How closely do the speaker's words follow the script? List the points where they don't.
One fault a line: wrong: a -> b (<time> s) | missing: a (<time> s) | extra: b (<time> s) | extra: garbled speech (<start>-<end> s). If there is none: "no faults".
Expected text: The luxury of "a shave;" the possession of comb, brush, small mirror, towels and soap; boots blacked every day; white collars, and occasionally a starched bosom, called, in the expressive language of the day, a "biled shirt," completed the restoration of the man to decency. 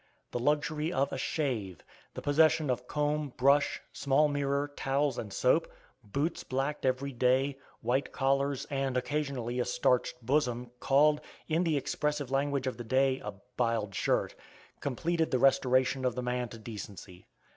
no faults